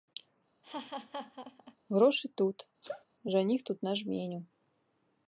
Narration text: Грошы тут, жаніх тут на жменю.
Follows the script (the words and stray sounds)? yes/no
no